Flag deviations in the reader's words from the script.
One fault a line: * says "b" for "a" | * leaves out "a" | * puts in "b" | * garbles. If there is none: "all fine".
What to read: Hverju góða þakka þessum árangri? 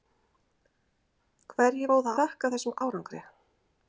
all fine